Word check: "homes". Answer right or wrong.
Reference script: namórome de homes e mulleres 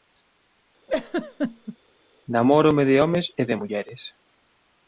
right